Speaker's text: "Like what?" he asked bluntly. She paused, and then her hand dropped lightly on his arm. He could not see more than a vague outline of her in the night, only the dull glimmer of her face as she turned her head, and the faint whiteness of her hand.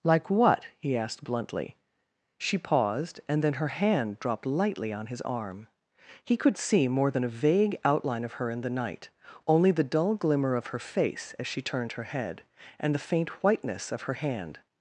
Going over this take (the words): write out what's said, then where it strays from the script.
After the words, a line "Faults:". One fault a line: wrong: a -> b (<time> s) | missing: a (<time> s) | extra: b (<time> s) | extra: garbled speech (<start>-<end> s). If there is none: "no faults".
"Like what?" he asked bluntly. She paused, and then her hand dropped lightly on his arm. He could see more than a vague outline of her in the night, only the dull glimmer of her face as she turned her head, and the faint whiteness of her hand.
Faults:
missing: not (6.6 s)